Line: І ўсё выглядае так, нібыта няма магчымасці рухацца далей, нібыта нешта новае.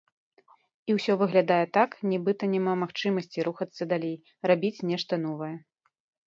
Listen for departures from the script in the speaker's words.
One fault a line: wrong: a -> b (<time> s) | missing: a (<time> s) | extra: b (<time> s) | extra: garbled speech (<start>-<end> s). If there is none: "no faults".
wrong: нібыта -> рабіць (4.5 s)